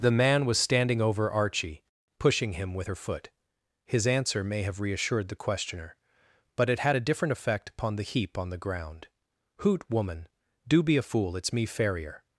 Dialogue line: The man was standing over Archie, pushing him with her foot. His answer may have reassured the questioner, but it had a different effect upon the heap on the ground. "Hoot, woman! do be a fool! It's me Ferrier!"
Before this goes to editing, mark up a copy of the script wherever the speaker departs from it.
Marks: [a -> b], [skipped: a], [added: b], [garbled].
The man was standing over Archie, pushing him with her foot. His answer may have reassured the questioner, but it had a different effect upon the heap on the ground. "Hoot, woman! do be a fool! It's me Ferrier!"